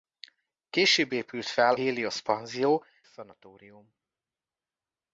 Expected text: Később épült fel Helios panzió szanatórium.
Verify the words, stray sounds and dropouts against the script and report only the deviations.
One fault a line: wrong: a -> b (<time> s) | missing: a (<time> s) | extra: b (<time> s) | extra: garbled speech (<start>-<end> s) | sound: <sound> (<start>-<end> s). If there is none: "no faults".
no faults